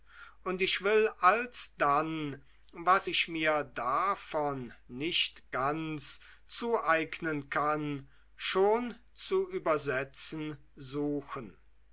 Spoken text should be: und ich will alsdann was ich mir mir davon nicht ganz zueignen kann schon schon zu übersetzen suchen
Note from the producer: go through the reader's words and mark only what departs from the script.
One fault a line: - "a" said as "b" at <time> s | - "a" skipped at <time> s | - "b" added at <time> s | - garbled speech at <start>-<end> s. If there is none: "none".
- "mir" skipped at 3.6 s
- "schon" skipped at 9.0 s